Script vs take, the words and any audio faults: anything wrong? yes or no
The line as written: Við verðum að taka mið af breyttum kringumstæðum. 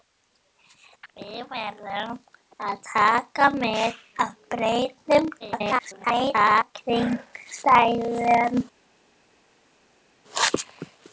yes